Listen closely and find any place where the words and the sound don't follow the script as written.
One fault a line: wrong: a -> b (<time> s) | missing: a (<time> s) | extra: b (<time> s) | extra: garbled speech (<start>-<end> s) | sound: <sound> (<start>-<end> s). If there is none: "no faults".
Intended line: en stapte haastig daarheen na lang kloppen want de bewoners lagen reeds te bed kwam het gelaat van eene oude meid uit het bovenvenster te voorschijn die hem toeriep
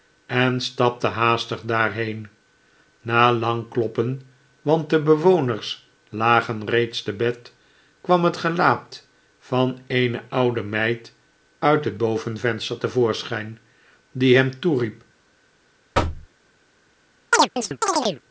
sound: thud (15.9-16.3 s)
sound: chirp (17.3-18.2 s)